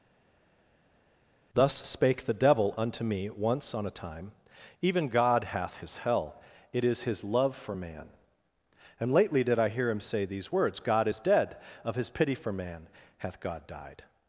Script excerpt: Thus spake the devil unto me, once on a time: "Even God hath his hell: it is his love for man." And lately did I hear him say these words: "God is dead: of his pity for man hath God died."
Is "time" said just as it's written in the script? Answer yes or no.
yes